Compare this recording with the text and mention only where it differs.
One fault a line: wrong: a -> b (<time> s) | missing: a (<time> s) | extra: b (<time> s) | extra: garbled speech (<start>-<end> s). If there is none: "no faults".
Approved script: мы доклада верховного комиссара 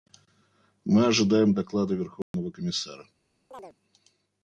extra: ожидаем (1.1 s)